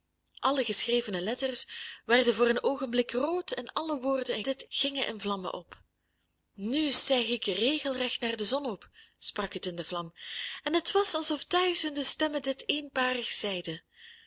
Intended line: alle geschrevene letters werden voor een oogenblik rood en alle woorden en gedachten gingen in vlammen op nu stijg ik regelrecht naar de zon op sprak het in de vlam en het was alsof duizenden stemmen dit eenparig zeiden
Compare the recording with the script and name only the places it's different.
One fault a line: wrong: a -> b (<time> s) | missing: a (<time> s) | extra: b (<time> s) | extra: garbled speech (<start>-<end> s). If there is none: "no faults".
wrong: gedachten -> dit (4.4 s)